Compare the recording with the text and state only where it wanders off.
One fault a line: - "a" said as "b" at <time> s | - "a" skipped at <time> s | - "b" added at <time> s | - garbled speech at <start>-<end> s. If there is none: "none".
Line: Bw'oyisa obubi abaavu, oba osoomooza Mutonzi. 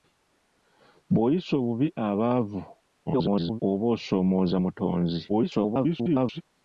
- garbled speech at 3.1-3.6 s
- garbled speech at 5.3-6.4 s